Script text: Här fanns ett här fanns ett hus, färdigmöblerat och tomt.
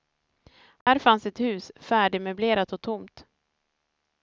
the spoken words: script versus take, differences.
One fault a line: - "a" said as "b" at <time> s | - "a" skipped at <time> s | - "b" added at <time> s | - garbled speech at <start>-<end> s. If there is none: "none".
- "här fanns ett" skipped at 1.4 s